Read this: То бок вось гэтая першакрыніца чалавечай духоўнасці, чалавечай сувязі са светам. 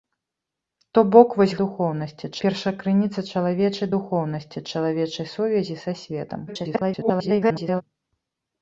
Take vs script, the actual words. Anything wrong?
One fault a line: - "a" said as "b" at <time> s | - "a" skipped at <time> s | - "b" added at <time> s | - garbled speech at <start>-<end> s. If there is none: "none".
- "гэтая" said as "духоўнасці" at 1.7 s
- garbled speech at 6.5-7.8 s